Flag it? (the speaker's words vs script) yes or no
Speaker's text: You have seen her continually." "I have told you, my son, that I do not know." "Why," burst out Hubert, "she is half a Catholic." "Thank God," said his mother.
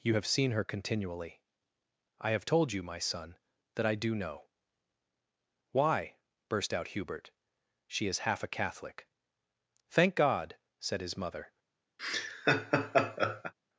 yes